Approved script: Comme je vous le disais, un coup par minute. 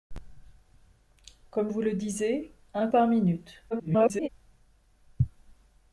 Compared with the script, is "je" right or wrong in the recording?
wrong